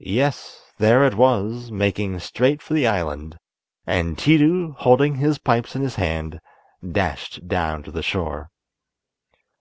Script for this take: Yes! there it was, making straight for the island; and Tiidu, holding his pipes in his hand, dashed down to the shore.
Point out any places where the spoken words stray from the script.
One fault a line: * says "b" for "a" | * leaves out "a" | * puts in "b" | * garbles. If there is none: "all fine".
all fine